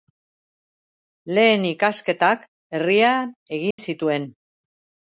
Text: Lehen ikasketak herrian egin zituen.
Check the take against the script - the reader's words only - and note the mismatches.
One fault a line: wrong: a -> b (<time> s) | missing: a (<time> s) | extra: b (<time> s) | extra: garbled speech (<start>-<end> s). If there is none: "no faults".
no faults